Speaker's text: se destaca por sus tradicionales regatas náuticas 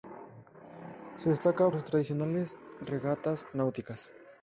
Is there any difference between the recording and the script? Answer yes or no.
yes